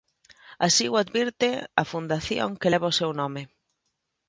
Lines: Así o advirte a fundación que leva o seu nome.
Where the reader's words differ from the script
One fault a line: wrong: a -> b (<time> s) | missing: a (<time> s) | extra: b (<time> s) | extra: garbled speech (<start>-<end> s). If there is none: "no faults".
no faults